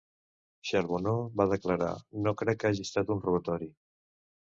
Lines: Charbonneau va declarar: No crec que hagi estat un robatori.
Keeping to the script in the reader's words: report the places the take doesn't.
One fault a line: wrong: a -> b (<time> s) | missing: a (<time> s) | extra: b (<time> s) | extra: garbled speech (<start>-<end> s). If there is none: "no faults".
no faults